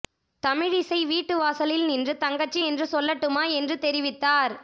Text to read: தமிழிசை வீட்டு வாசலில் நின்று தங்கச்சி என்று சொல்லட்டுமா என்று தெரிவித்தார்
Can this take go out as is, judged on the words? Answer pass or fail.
pass